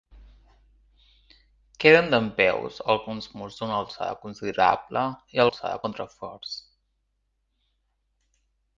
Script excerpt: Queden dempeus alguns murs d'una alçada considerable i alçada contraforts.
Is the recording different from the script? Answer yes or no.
no